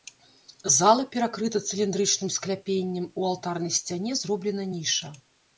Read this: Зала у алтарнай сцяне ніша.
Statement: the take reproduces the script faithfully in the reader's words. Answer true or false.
false